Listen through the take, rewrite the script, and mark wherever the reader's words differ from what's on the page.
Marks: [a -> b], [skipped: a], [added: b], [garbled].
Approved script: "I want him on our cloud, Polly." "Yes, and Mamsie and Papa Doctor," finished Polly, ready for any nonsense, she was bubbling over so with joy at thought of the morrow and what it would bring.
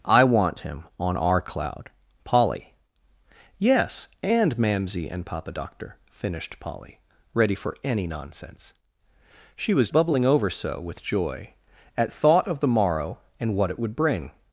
"I want him on our cloud, Polly." "Yes, and Mamsie and Papa Doctor," finished Polly, ready for any nonsense, she was bubbling over so with joy at thought of the morrow and what it would bring.